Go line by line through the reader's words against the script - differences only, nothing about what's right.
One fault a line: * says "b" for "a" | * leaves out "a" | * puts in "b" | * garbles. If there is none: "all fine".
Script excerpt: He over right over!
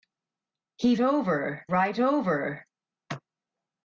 all fine